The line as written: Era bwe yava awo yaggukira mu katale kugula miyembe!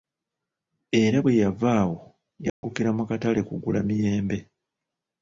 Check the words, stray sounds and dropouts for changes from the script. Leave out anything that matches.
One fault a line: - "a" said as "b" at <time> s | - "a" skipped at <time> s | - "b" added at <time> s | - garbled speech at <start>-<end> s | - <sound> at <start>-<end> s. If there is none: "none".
- dropout at 2.5-2.6 s